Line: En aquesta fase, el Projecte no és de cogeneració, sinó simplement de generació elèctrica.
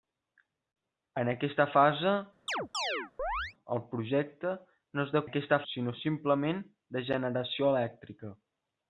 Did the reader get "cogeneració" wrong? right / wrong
wrong